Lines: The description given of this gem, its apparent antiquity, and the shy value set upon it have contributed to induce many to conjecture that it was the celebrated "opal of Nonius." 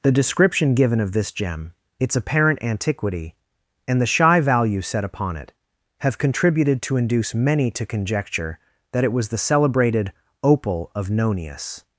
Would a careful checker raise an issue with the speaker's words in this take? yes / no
no